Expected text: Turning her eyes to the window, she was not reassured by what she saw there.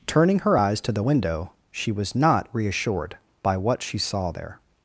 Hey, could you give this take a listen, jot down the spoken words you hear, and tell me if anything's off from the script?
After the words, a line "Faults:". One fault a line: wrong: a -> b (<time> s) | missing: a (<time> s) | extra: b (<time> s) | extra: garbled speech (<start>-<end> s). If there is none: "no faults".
Turning her eyes to the window, she was not reassured by what she saw there.
Faults:
no faults